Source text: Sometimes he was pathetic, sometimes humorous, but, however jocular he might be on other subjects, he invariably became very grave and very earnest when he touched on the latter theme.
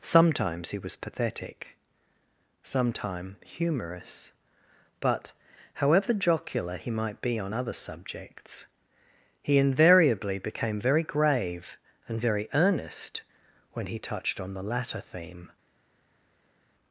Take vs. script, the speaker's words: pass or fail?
fail